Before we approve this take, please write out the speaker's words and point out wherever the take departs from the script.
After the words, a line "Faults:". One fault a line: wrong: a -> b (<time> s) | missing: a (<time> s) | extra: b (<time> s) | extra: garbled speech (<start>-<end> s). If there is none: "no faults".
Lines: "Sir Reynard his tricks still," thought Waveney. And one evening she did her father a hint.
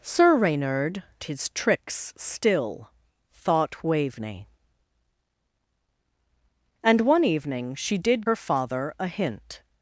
"Sir Reynard his tricks still," thought Waveney. And one evening she did her father a hint.
Faults:
no faults